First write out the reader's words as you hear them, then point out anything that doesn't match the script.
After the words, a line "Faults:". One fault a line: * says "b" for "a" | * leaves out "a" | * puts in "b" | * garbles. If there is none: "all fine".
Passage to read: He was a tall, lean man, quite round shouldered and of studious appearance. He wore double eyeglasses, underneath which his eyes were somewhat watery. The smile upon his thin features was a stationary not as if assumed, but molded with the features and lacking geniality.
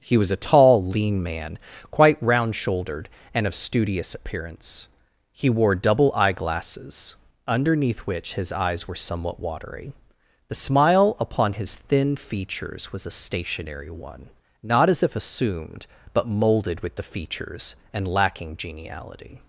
He was a tall, lean man, quite round shouldered and of studious appearance. He wore double eyeglasses, underneath which his eyes were somewhat watery. The smile upon his thin features was a stationary one, not as if assumed, but molded with the features and lacking geniality.
Faults:
* puts in "one"